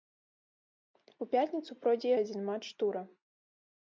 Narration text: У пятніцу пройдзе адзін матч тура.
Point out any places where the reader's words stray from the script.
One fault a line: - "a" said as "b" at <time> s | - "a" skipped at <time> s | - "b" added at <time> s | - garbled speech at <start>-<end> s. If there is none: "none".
none